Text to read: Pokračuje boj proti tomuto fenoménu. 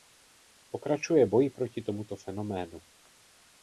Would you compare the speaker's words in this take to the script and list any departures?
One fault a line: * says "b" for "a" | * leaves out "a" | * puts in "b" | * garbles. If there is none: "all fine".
all fine